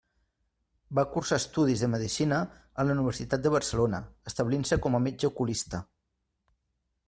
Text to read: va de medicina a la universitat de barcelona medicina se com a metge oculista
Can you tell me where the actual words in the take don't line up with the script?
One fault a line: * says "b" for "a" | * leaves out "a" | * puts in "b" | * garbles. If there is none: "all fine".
* puts in "cursar estudis"
* says "establint" for "medicina"